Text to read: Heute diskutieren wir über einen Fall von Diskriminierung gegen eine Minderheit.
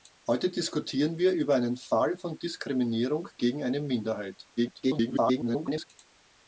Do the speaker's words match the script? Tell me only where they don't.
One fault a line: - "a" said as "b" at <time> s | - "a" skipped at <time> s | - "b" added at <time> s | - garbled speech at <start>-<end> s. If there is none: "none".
- garbled speech at 4.6-5.9 s